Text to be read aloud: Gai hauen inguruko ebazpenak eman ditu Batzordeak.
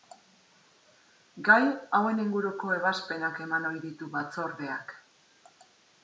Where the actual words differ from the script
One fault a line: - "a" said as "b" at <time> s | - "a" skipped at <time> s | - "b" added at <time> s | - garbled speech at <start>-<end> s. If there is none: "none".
- "ohi" added at 3.7 s